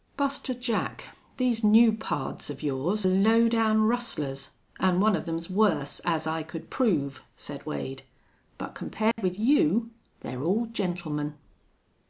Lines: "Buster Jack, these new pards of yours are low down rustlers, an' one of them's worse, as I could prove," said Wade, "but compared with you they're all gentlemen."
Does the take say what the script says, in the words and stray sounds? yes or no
no